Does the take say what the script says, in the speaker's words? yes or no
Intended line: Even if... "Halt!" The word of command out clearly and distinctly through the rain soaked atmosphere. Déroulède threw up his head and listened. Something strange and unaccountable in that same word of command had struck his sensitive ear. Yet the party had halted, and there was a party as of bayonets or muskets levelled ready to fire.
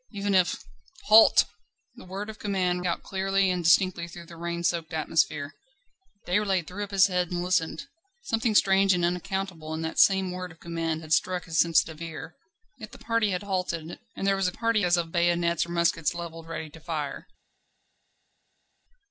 yes